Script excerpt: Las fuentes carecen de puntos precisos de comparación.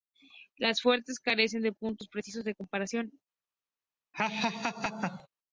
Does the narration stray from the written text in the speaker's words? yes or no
no